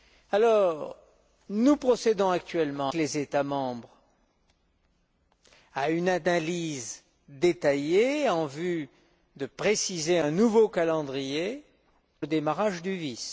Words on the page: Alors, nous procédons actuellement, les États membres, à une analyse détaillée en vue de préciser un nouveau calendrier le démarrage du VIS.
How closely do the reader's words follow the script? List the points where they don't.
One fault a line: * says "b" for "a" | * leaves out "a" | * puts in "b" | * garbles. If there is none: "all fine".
all fine